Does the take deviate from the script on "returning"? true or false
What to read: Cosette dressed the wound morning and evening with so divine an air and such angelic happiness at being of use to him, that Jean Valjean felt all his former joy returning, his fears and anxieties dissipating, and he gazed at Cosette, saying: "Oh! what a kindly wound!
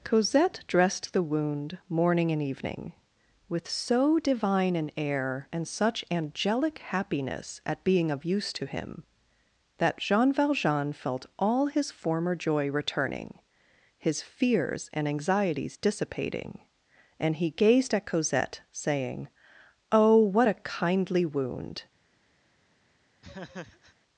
false